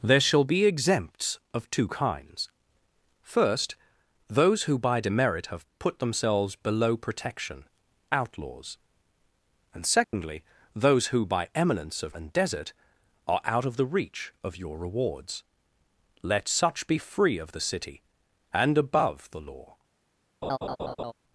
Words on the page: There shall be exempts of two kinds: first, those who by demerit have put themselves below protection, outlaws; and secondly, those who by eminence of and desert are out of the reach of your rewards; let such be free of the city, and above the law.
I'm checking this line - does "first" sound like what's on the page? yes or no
yes